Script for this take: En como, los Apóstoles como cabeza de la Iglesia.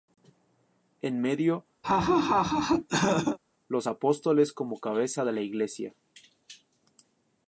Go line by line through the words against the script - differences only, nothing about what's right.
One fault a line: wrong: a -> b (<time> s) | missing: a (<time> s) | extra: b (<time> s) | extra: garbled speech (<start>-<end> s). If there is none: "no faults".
wrong: como -> medio (1.2 s)